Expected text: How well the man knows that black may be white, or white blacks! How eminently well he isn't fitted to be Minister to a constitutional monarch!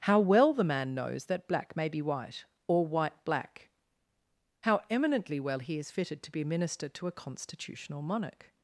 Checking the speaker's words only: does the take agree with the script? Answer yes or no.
no